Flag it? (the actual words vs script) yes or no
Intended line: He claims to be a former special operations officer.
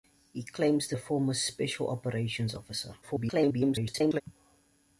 yes